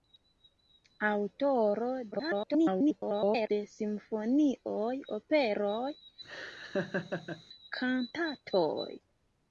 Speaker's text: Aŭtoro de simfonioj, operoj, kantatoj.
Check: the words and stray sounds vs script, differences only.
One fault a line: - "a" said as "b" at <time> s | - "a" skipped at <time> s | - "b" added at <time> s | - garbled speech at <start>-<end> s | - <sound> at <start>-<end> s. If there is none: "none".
- garbled speech at 2.1-3.5 s
- laugh at 6.2-7.4 s